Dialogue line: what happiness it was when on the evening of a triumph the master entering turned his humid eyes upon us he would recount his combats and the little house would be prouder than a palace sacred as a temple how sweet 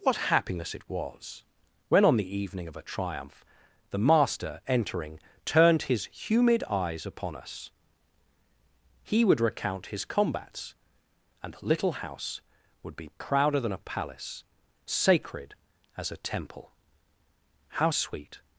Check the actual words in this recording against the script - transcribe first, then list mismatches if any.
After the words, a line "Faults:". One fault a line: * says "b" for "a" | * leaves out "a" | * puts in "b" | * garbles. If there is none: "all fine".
what happiness it was when on the evening of a triumph the master entering turned his humid eyes upon us he would recount his combats and the little house would be prouder than a palace sacred as a temple how sweet
Faults:
all fine